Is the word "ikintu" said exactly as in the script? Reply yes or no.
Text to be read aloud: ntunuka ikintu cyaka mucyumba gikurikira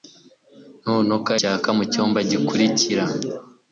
no